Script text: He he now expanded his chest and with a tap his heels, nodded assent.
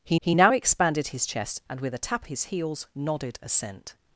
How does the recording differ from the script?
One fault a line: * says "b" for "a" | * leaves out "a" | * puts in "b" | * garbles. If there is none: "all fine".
all fine